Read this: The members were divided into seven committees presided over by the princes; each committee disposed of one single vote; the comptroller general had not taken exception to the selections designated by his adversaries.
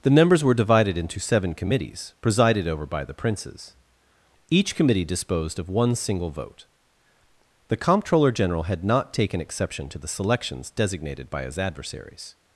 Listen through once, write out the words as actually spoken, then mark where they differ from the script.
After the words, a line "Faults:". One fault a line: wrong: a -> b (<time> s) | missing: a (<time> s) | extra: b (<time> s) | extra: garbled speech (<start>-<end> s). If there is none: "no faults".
The members were divided into seven committees presided over by the princes; each committee disposed of one single vote; the comptroller general had not taken exception to the selections designated by his adversaries.
Faults:
no faults